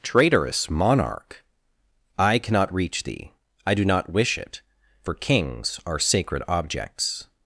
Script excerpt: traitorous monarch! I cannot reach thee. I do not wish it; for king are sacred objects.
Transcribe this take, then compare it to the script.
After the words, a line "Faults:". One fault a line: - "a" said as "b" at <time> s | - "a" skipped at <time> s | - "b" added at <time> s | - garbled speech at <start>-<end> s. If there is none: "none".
traitorous monarch! I cannot reach thee. I do not wish it; for kings are sacred objects.
Faults:
- "king" said as "kings" at 5.1 s